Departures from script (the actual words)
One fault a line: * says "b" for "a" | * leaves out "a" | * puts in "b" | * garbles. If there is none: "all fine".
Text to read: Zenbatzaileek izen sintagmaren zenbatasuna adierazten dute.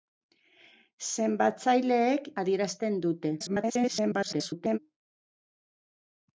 * leaves out "izen sintagmaren zenbatasuna"
* garbles